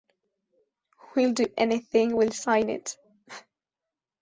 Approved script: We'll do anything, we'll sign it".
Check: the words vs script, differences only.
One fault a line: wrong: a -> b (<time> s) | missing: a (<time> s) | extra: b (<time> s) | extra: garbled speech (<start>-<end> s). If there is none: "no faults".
no faults